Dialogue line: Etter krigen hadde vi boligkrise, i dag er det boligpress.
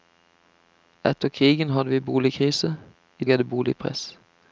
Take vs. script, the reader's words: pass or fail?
fail